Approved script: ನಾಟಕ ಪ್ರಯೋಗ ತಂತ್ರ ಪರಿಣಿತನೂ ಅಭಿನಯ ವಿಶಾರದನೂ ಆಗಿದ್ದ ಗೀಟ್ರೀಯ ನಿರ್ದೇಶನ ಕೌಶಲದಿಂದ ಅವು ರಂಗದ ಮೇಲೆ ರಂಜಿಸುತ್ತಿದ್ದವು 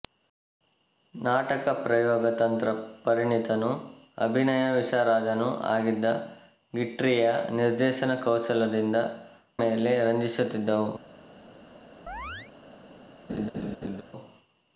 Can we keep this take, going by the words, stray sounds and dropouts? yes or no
no